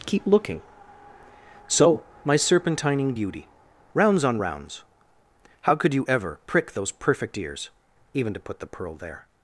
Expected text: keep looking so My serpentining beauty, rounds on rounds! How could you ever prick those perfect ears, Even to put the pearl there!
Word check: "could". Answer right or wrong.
right